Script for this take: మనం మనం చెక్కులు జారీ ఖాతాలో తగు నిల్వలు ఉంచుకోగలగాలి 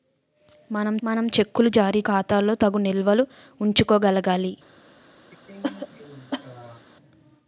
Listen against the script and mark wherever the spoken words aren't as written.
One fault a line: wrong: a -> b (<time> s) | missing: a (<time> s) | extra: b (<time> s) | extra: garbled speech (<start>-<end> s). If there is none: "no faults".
no faults